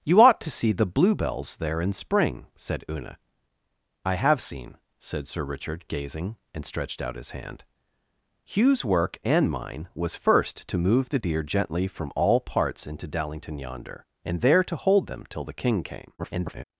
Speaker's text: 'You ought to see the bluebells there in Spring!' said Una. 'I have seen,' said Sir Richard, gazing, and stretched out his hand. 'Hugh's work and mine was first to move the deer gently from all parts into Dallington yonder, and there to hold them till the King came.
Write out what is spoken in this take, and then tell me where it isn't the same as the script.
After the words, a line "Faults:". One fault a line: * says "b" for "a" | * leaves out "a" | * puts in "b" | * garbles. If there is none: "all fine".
'You ought to see the bluebells there in Spring!' said Una. 'I have seen,' said Sir Richard, gazing, and stretched out his hand. 'Hugh's work and mine was first to move the deer gently from all parts into Dallington yonder, and there to hold them till the King came. [garbled]
Faults:
* garbles